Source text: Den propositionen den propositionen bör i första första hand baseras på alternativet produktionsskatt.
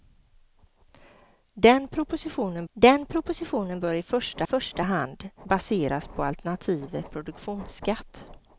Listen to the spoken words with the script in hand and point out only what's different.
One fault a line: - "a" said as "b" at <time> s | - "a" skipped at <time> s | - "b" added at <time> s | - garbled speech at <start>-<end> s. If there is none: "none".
none